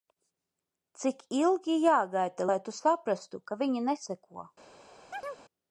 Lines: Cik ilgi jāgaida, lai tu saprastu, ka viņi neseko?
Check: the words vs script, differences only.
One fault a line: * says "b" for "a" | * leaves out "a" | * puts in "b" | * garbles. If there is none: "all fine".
all fine